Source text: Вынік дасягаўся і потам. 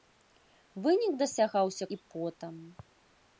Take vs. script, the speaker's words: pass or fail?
pass